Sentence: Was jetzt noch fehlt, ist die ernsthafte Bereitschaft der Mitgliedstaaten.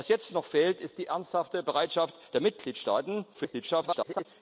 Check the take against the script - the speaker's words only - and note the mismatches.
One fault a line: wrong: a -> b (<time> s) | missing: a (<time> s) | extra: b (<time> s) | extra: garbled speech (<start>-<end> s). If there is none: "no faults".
extra: garbled speech (3.3-4.3 s)